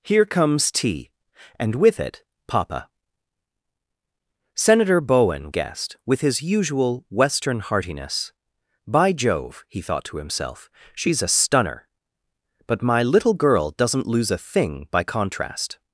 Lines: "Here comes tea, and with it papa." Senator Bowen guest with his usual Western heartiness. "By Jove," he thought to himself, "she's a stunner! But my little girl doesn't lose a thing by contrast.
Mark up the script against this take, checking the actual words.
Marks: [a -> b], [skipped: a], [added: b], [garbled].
"Here comes tea, and with it papa." Senator Bowen guest with his usual Western heartiness. "By Jove," he thought to himself, "she's a stunner! But my little girl doesn't lose a thing by contrast.